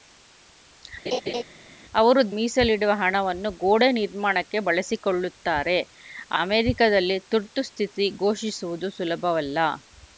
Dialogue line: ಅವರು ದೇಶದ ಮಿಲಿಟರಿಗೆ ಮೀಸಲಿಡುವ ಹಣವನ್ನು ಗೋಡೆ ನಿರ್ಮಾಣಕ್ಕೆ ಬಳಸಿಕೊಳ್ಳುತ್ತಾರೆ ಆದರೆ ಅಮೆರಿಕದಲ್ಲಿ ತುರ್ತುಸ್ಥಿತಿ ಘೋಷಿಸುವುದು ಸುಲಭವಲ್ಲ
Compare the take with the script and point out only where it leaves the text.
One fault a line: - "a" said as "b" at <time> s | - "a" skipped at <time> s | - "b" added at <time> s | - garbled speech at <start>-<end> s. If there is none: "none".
- "ದೇಶದ ಮಿಲಿಟರಿಗೆ" skipped at 2.2 s
- "ಆದರೆ" skipped at 5.8 s